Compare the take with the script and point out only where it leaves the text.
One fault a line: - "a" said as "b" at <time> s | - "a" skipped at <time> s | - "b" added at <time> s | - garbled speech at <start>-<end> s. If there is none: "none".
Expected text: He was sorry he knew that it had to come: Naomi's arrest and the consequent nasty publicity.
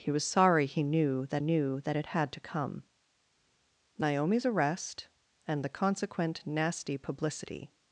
- "knew that" added at 1.4 s